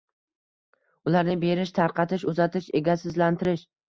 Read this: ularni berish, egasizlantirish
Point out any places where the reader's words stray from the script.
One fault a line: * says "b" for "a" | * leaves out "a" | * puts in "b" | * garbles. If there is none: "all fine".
* puts in "tarqatish uzatish"